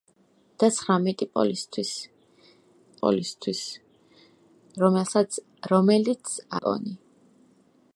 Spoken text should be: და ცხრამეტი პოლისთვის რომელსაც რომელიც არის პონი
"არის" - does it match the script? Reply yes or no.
no